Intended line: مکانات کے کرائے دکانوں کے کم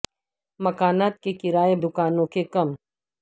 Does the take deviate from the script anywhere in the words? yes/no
no